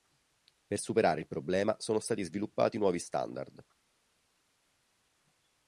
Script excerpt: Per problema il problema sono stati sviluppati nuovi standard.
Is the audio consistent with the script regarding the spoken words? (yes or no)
no